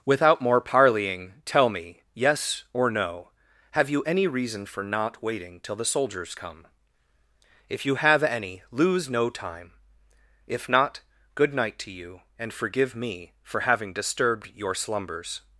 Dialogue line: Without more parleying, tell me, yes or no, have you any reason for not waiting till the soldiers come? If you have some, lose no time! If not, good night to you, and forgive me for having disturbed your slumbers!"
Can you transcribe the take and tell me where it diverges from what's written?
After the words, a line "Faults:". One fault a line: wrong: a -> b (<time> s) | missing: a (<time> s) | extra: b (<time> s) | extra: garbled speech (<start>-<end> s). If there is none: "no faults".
Without more parleying, tell me, yes or no, have you any reason for not waiting till the soldiers come? If you have any, lose no time! If not, good night to you, and forgive me for having disturbed your slumbers!"
Faults:
wrong: some -> any (8.2 s)